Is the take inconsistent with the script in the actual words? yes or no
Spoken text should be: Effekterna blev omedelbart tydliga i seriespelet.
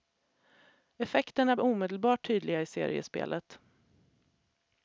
yes